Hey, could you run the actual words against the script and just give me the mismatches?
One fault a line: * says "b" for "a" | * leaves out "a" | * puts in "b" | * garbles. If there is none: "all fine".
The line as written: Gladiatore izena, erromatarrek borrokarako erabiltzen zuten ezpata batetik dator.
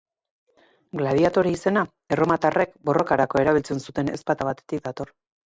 all fine